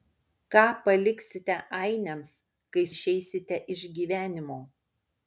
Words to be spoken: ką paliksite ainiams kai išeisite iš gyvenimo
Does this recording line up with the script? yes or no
yes